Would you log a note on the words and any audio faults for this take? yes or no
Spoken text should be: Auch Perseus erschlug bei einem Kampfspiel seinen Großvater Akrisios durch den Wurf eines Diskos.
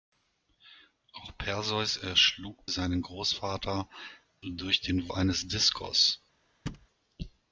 yes